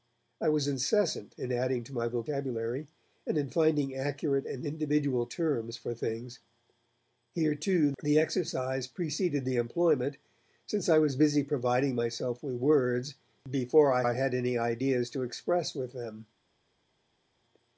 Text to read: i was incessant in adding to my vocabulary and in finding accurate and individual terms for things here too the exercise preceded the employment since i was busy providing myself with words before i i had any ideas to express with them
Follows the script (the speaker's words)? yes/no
yes